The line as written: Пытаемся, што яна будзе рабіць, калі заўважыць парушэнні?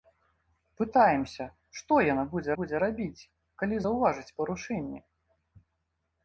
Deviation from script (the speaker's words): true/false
true